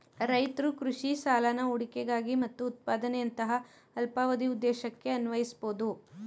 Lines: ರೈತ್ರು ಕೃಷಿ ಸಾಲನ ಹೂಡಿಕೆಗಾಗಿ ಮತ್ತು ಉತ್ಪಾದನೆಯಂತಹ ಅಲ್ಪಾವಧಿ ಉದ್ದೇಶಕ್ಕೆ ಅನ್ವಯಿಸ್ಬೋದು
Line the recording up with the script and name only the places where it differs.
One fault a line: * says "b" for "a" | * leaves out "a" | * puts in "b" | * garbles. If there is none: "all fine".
all fine